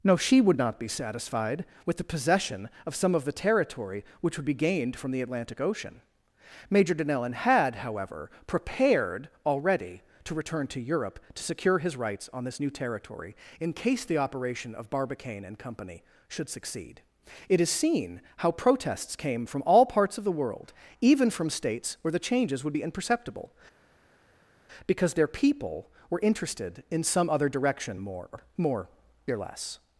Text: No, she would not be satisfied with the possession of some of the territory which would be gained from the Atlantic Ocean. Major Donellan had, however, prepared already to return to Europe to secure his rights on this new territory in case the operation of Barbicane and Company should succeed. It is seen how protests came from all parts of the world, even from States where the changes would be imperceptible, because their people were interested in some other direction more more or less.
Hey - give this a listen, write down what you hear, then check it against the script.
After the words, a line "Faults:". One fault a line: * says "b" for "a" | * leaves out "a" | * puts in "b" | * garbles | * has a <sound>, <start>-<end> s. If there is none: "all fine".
No, she would not be satisfied with the possession of some of the territory which would be gained from the Atlantic Ocean. Major Donellan had, however, prepared already to return to Europe to secure his rights on this new territory in case the operation of Barbicane and Company should succeed. It is seen how protests came from all parts of the world, even from States where the changes would be imperceptible, because their people were interested in some other direction more more or less.
Faults:
all fine